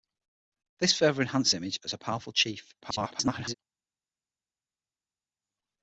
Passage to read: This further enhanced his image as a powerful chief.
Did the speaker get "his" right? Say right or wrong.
wrong